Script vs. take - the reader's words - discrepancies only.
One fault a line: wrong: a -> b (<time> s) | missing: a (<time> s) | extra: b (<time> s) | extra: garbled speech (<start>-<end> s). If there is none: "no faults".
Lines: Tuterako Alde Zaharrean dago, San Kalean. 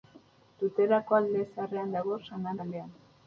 no faults